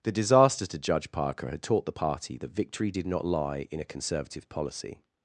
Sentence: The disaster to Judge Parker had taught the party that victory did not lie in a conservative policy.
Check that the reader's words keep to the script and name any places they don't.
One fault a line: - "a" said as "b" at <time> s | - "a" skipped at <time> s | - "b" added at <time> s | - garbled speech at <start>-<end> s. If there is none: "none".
none